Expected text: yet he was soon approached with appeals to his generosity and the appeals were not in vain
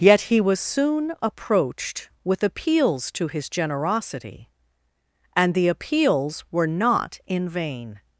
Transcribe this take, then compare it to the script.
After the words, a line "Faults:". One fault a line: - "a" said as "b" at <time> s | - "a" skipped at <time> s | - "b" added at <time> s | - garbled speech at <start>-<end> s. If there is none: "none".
yet he was soon approached with appeals to his generosity and the appeals were not in vain
Faults:
none